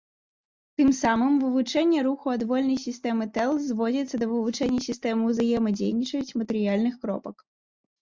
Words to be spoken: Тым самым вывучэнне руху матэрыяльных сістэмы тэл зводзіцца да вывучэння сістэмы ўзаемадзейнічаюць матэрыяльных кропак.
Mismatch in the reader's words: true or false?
true